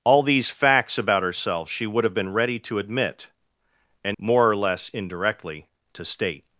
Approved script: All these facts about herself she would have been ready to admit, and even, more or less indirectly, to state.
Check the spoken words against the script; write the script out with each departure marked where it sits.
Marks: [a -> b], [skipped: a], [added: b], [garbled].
All these facts about herself she would have been ready to admit, and [skipped: even,] more or less indirectly, to state.